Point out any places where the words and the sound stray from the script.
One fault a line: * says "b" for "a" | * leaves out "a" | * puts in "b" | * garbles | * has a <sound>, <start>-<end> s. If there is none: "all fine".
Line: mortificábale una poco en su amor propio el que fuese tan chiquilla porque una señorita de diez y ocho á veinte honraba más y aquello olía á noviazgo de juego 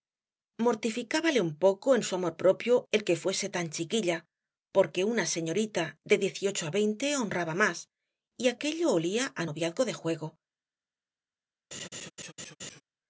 * says "un" for "una"
* has a laugh, 11.7-12.8 s